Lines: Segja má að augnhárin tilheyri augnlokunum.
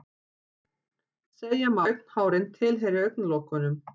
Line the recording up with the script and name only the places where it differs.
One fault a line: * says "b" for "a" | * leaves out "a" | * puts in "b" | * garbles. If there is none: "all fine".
* leaves out "að"